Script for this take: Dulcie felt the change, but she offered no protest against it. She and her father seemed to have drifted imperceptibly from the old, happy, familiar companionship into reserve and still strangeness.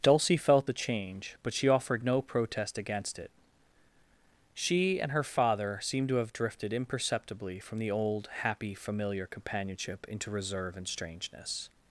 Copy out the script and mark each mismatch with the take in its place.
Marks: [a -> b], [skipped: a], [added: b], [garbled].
Dulcie felt the change, but she offered no protest against it. She and her father seemed to have drifted imperceptibly from the old, happy, familiar companionship into reserve and [skipped: still] strangeness.